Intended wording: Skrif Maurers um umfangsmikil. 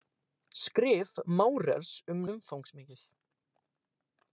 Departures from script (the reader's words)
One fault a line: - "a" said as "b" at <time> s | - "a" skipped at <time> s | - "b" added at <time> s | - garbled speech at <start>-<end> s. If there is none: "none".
none